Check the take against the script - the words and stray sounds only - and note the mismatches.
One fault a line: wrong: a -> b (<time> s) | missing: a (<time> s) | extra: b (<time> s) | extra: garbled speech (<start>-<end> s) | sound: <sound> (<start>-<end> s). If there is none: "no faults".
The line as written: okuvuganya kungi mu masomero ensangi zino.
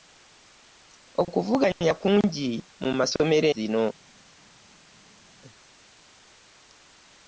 missing: ensangi (3.5 s)